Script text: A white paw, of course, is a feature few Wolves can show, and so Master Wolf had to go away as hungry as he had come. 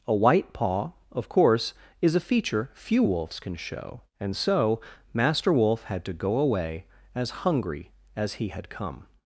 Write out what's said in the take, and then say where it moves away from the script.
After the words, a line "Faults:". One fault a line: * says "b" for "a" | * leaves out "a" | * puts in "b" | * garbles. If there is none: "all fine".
A white paw, of course, is a feature few Wolves can show, and so Master Wolf had to go away as hungry as he had come.
Faults:
all fine